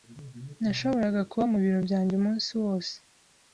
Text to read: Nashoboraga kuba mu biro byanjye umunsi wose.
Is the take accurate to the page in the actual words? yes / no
yes